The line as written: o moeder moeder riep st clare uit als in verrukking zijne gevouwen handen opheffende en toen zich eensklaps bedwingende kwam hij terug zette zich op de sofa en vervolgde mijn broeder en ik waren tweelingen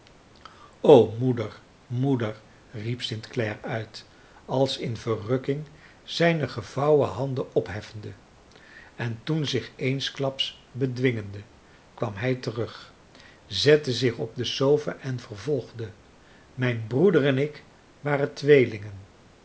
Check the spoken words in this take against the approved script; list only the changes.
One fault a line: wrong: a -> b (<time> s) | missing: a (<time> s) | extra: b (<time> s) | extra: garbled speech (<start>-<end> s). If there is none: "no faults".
no faults